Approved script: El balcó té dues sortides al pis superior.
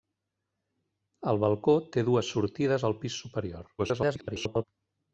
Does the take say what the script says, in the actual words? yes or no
no